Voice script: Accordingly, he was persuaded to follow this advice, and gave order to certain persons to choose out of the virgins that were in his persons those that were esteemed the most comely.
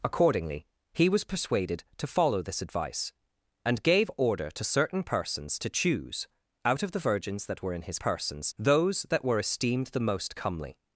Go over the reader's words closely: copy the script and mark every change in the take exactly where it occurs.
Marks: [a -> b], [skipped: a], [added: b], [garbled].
Accordingly, he was persuaded to follow this advice, and gave order to certain persons to choose out of the virgins that were in his persons those that were esteemed the most comely.